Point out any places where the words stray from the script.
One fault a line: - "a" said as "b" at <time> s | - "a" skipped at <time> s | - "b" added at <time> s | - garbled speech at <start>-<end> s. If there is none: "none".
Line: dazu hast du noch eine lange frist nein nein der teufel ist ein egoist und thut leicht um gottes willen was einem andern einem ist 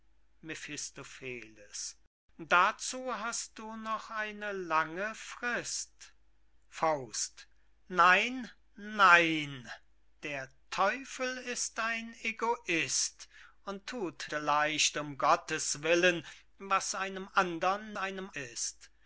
none